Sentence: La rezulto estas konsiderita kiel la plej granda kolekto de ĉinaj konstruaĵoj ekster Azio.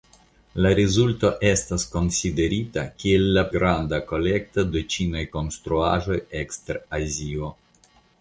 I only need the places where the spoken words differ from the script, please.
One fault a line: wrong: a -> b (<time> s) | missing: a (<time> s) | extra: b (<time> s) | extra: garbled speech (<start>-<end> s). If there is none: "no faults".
missing: plej (3.4 s)